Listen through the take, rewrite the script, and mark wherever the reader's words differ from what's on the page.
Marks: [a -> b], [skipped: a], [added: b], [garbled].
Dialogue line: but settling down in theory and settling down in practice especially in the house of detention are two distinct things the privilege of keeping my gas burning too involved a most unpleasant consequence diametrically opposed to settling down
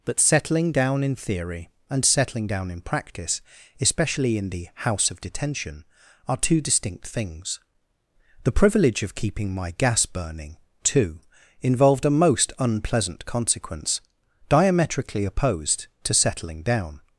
but settling down in theory and settling down in practice especially in the house of detention are two distinct things the privilege of keeping my gas burning too involved a most unpleasant consequence diametrically opposed to settling down